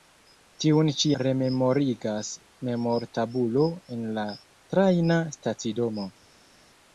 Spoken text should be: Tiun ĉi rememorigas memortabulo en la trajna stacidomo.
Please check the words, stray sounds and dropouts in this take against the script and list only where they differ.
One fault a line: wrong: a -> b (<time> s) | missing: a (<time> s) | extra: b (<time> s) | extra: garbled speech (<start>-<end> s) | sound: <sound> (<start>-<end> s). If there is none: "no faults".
no faults